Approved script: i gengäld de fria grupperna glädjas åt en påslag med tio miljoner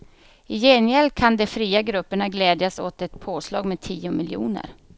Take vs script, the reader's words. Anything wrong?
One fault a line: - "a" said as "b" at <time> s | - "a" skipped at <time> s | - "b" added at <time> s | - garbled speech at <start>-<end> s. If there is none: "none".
- "kan" added at 1.1 s
- "en" said as "ett" at 3.0 s